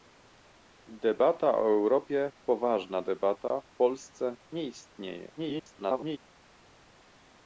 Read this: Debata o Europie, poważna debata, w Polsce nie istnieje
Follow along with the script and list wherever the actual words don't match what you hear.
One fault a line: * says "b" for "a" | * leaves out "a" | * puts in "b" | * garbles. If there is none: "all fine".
* garbles